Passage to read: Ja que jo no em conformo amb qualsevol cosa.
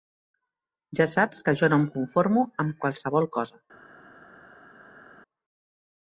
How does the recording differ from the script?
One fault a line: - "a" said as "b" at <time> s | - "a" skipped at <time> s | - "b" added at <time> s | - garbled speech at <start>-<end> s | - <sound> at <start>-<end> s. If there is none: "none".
- "saps" added at 1.1 s